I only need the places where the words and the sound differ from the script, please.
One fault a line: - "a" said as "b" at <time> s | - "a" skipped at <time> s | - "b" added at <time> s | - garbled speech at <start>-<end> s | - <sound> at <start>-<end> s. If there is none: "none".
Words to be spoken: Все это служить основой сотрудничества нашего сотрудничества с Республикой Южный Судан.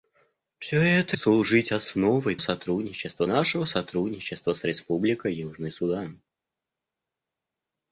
none